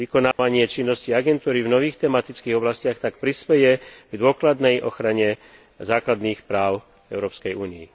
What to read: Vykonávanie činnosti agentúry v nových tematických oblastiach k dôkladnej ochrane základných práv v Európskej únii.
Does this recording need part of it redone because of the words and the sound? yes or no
yes